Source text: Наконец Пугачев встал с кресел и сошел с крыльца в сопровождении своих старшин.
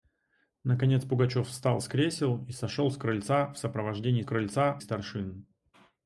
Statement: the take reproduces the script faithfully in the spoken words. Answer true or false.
false